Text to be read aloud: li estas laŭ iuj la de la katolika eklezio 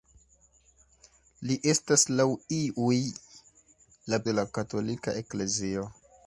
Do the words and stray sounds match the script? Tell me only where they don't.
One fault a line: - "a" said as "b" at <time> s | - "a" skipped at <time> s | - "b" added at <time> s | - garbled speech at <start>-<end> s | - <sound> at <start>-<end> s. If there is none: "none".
none